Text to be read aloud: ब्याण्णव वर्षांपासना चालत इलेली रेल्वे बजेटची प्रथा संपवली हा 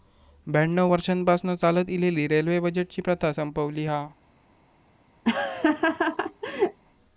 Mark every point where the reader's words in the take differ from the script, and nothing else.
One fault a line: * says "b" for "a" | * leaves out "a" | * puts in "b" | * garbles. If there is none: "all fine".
all fine